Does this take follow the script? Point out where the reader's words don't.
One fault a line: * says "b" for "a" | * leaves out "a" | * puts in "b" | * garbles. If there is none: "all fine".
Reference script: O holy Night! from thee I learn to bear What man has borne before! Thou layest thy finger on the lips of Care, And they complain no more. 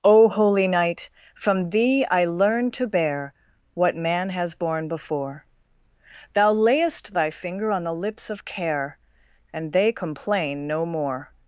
all fine